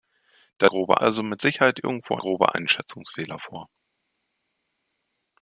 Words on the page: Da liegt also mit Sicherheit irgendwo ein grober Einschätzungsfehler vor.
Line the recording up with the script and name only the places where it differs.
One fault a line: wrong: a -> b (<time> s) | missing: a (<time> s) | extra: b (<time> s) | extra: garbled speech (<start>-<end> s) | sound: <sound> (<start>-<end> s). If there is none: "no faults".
wrong: liegt -> grober (0.7 s)
missing: ein (2.2 s)